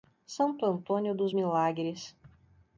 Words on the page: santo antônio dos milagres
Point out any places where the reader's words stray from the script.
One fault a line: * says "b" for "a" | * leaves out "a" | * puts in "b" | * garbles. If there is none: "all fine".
all fine